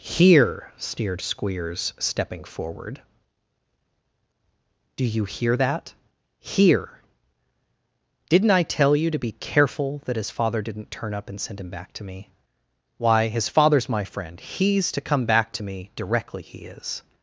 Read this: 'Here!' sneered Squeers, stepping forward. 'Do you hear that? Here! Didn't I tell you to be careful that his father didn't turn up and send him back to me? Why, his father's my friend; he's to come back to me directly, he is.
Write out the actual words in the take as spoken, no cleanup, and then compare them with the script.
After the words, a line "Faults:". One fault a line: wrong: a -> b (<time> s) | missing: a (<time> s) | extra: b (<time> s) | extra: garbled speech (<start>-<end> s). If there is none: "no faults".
'Here!' sneered Squeers, stepping forward. 'Do you hear that? Here! Didn't I tell you to be careful that his father didn't turn up and send him back to me? Why, his father's my friend; he's to come back to me directly, he is.
Faults:
no faults